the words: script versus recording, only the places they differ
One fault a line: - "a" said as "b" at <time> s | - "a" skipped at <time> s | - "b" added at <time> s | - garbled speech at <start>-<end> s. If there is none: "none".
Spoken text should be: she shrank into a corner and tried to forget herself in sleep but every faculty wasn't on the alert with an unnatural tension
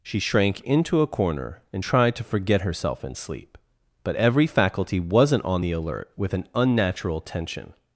none